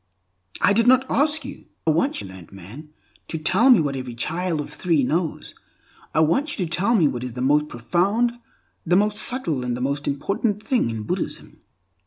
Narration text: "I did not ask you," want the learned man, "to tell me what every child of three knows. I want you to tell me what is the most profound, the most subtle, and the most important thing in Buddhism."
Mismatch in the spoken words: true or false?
false